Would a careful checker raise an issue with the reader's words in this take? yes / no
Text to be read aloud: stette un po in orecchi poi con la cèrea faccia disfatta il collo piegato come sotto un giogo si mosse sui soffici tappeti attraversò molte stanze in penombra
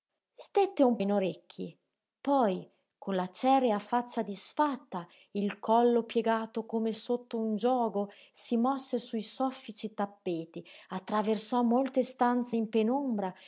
yes